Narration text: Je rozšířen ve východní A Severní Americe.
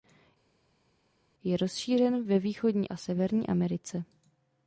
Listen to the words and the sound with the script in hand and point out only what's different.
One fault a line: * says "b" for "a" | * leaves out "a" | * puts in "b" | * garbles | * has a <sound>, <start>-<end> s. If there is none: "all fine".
all fine